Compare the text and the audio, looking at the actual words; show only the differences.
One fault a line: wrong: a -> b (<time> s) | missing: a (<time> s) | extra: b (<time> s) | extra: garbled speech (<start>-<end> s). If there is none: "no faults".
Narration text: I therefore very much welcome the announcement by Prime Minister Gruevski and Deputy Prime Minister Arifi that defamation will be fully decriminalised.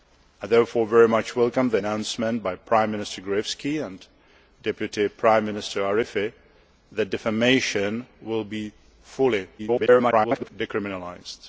extra: garbled speech (9.6-10.5 s)